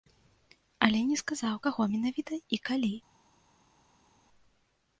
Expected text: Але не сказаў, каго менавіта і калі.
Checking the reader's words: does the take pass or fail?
pass